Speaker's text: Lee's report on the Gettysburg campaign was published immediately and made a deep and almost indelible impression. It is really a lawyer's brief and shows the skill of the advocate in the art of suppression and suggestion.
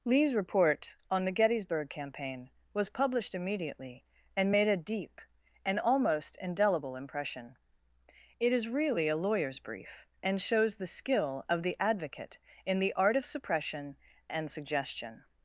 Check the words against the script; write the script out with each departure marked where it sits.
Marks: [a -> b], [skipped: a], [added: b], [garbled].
Lee's report on the Gettysburg campaign was published immediately and made a deep and almost indelible impression. It is really a lawyer's brief and shows the skill of the advocate in the art of suppression and suggestion.